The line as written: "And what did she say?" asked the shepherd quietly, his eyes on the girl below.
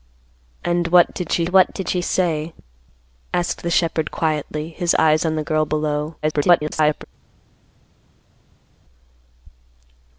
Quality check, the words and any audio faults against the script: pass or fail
fail